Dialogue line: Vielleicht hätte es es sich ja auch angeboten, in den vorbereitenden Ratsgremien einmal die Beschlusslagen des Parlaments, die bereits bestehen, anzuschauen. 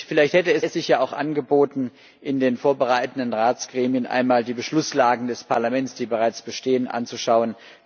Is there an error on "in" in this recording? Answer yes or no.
no